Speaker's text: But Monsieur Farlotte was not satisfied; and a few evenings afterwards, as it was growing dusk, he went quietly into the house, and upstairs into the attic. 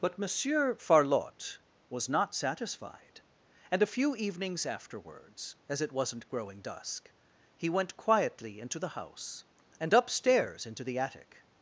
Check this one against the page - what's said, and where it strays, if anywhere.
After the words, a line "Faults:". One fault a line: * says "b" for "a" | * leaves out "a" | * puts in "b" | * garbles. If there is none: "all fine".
But Monsieur Farlotte was not satisfied; and a few evenings afterwards, as it wasn't growing dusk, he went quietly into the house, and upstairs into the attic.
Faults:
* says "wasn't" for "was"